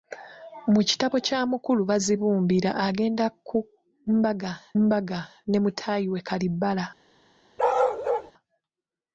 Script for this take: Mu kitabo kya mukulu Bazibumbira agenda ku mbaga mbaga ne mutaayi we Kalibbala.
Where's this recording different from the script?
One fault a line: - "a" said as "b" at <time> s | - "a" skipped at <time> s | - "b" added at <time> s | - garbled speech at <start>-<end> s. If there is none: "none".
none